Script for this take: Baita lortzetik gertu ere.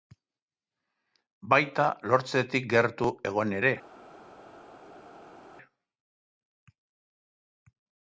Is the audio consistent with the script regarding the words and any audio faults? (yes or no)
no